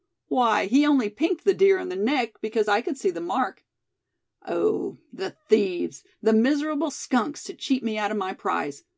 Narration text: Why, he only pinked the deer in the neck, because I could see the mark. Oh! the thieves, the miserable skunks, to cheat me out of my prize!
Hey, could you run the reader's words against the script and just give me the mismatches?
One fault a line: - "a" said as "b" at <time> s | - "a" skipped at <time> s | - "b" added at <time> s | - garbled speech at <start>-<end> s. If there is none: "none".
none